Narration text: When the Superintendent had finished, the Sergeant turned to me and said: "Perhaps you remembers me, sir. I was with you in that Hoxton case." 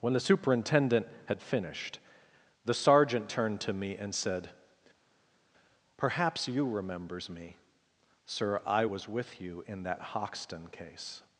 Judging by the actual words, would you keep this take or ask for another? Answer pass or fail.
pass